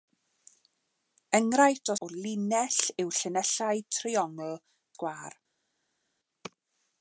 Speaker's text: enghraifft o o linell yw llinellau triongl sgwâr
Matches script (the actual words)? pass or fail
pass